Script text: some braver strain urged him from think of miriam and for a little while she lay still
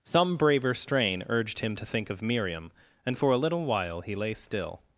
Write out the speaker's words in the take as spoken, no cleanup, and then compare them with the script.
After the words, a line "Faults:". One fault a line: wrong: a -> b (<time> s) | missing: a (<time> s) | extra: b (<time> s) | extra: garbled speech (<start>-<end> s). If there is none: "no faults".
some braver strain urged him to think of miriam and for a little while he lay still
Faults:
wrong: from -> to (1.7 s)
wrong: she -> he (4.0 s)